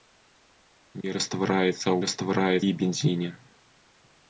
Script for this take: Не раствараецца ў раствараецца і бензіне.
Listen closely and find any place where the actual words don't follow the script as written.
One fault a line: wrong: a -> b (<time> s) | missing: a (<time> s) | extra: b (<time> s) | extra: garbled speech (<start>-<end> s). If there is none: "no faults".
no faults